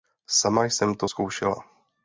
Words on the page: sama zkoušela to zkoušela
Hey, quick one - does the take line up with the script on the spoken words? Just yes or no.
no